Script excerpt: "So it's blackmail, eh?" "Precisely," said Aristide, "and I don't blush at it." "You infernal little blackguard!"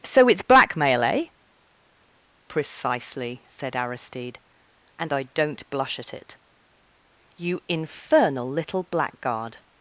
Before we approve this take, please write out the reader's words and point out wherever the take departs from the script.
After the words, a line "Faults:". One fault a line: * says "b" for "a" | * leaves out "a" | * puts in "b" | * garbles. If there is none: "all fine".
"So it's blackmail, eh?" "Precisely," said Aristide, "and I don't blush at it." "You infernal little blackguard!"
Faults:
all fine